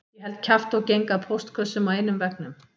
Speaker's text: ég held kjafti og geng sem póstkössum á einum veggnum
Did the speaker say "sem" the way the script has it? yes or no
no